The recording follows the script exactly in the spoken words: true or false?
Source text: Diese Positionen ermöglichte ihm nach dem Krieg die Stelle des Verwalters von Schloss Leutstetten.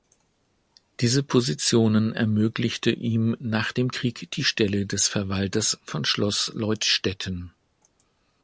true